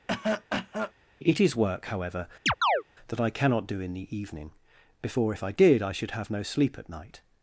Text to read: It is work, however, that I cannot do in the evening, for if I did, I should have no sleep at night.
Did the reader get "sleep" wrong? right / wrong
right